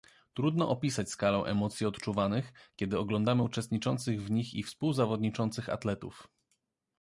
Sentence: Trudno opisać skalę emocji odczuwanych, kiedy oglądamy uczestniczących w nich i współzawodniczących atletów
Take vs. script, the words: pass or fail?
pass